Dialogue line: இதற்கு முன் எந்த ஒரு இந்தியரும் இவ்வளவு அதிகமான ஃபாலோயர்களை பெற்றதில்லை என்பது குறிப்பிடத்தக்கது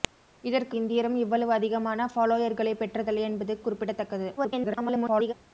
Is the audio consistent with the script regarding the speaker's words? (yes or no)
no